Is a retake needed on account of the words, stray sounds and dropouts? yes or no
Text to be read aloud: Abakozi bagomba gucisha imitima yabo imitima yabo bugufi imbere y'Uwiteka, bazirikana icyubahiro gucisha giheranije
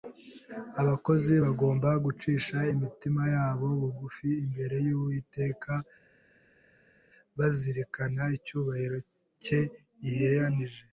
yes